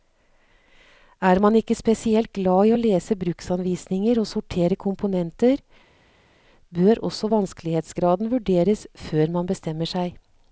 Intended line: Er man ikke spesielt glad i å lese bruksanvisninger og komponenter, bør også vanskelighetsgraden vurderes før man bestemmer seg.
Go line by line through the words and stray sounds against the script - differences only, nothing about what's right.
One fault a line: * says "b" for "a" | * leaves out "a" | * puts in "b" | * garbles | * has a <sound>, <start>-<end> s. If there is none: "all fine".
* puts in "sortere"